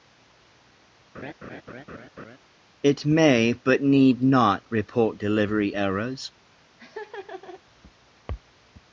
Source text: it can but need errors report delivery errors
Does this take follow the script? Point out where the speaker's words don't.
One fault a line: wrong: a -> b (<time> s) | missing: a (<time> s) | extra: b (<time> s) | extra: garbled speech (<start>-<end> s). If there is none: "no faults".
wrong: can -> may (3.0 s)
wrong: errors -> not (4.2 s)